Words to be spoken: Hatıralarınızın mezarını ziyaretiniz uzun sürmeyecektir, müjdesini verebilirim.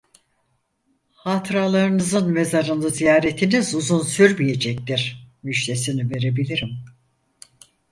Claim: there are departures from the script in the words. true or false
false